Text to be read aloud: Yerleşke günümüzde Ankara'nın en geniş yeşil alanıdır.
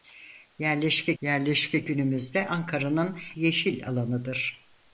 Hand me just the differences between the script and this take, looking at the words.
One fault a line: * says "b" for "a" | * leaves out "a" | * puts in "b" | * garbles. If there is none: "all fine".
* puts in "yerleşke"
* leaves out "en geniş"